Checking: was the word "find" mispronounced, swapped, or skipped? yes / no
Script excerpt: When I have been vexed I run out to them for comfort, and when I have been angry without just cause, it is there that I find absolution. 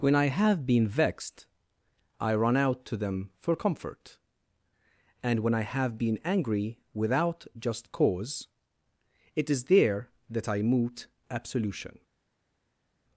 yes